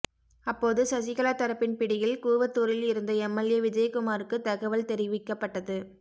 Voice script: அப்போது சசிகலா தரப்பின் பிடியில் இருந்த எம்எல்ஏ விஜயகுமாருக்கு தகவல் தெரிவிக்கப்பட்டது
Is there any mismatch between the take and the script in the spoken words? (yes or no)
yes